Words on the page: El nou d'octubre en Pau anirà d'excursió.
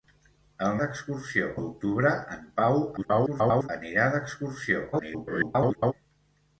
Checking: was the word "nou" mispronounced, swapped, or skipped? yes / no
yes